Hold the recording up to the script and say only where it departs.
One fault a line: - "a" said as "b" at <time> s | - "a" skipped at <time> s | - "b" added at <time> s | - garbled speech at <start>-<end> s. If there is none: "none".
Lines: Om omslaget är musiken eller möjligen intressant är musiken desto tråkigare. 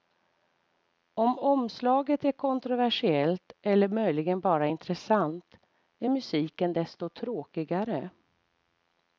- "musiken" said as "kontroversiellt" at 2.3 s
- "bara" added at 4.4 s